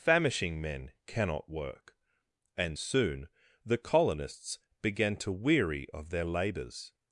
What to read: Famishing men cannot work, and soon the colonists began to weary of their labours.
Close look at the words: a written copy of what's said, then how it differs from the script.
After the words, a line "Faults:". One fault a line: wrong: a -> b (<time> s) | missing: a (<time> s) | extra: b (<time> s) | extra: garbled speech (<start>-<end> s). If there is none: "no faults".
Famishing men cannot work, and soon the colonists began to weary of their labours.
Faults:
no faults